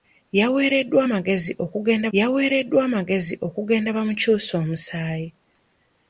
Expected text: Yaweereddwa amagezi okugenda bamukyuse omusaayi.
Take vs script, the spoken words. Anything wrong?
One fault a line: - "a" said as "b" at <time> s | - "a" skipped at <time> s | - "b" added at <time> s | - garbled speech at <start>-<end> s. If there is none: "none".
- "yaweereddwa amagezi okugenda" added at 2.2 s